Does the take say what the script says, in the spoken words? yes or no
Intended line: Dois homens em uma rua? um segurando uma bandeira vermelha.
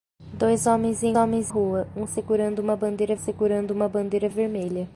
no